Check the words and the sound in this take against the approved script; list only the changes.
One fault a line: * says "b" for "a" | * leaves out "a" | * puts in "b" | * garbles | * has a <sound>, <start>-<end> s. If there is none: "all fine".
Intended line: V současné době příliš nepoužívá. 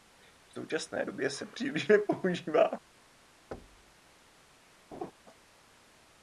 * puts in "se"
* has a thud, 3.5-3.9 s
* has a laugh, 4.9-5.1 s